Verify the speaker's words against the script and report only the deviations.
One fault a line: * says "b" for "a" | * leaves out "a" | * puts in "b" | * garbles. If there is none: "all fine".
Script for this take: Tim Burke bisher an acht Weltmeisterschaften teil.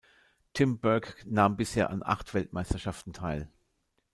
* puts in "nahm"